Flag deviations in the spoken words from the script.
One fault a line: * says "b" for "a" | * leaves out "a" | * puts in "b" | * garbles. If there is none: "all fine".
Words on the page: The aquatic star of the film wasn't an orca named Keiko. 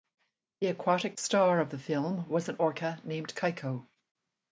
* says "was" for "wasn't"